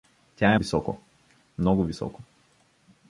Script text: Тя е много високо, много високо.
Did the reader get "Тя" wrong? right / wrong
right